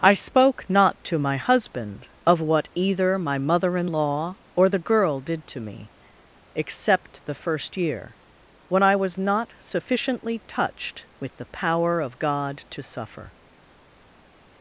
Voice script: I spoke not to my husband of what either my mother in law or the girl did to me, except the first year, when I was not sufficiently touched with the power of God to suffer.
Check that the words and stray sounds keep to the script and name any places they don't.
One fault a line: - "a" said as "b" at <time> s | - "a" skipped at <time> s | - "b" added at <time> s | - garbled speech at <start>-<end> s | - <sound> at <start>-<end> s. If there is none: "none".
none